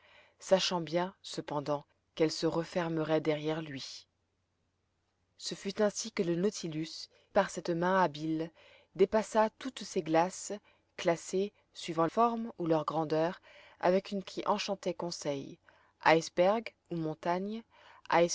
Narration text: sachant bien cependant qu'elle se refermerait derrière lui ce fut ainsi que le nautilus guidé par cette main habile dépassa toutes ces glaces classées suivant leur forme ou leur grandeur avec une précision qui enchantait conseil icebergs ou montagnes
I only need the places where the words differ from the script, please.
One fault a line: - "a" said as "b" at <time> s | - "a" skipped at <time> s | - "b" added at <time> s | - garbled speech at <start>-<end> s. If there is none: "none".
- "guidé" skipped at 7.1 s
- "leur" skipped at 12.1 s
- "précision" skipped at 14.2 s